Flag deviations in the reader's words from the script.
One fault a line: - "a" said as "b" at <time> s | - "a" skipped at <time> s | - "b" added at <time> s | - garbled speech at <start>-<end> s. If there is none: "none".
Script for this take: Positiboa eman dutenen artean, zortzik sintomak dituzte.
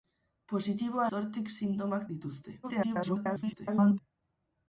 - "eman dutenen artean" skipped at 1.1 s
- garbled speech at 2.6-4.0 s